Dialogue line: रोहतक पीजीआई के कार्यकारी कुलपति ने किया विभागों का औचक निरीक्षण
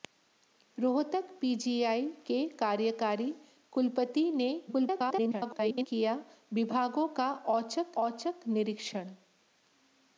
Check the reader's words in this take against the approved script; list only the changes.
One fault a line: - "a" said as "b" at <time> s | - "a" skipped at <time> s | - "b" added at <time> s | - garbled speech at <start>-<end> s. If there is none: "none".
- garbled speech at 4.7-5.9 s
- "औचक" added at 8.0 s